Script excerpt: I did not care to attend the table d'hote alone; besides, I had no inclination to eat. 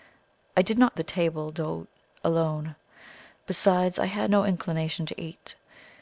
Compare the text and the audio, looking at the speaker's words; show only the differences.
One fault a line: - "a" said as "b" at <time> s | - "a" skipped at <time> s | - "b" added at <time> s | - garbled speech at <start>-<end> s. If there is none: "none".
- "care to attend" skipped at 1.0 s